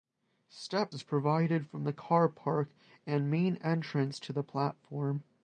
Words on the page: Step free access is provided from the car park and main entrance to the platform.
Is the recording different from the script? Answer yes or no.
yes